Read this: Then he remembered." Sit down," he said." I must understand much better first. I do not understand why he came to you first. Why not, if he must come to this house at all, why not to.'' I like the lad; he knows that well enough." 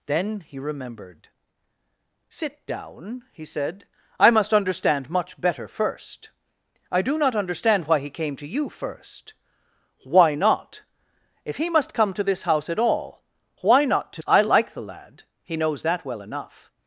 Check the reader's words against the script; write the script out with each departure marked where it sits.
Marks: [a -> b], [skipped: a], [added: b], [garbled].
Then he remembered." Sit down," he said." I must understand much better first. I do not understand why he came to you first. Why not, if he must come to this house at all, why not to.'' I like the lad; he knows that well enough."